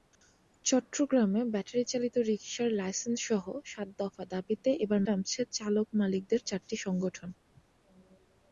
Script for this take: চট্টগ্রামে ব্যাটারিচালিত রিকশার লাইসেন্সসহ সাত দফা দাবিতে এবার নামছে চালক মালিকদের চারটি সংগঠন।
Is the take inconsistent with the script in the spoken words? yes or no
no